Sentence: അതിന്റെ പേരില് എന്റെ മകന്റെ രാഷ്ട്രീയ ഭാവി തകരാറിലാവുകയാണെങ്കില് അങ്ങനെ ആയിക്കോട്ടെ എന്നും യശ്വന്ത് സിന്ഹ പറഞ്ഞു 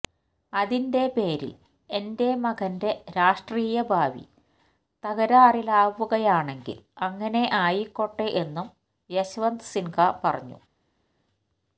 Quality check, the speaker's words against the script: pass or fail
pass